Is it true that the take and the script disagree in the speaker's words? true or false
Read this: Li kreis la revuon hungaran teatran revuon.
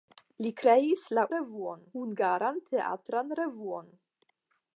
false